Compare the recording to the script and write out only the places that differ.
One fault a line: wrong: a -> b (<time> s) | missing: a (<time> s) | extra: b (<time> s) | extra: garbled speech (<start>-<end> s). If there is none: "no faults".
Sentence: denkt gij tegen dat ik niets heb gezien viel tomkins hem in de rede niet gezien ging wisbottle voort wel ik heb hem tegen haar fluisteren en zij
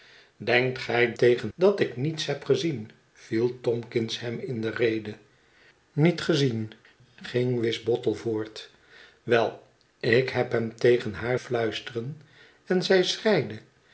no faults